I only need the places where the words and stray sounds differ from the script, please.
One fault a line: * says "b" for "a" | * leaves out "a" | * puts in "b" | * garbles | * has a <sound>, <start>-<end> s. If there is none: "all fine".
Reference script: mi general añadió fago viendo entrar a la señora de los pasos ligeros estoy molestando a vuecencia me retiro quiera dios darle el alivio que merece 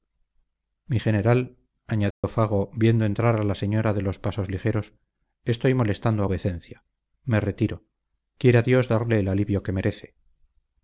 * has a dropout, 2.1-2.2 s